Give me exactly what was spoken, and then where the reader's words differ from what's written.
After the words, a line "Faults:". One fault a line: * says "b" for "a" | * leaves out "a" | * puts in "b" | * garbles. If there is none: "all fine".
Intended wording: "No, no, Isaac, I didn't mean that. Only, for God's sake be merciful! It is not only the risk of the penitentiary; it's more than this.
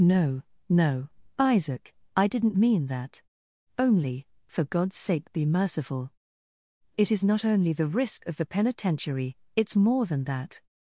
"No, no, Isaac, I didn't mean that. Only, for God's sake be merciful! It is not only the risk of the penitentiary; it's more than that.
Faults:
* says "that" for "this"